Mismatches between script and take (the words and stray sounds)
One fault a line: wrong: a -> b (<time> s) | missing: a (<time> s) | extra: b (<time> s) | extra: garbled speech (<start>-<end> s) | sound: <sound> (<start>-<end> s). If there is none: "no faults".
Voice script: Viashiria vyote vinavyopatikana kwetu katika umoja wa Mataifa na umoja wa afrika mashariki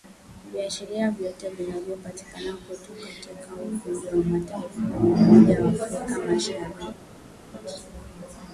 no faults